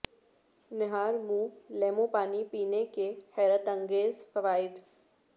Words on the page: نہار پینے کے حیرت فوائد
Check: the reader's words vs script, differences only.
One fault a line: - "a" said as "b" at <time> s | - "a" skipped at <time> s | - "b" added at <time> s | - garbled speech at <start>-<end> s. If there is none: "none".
- "منہ لیموں پانی" added at 1.2 s
- "انگیز" added at 3.7 s